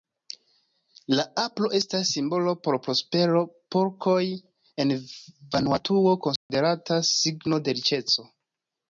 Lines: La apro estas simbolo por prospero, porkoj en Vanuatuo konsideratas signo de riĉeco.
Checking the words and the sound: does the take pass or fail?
fail